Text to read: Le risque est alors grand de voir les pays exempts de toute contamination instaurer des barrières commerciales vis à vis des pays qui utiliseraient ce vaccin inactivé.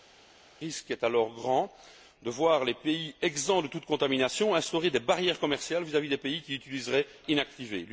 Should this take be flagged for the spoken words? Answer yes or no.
yes